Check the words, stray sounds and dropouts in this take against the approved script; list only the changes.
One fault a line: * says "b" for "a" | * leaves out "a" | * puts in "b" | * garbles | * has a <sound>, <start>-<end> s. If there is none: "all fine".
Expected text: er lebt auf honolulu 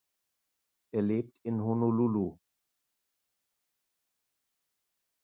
* says "in" for "auf"